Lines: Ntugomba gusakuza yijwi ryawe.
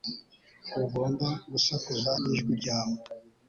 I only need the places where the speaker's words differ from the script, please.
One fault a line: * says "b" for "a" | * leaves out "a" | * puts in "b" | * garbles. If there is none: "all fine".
all fine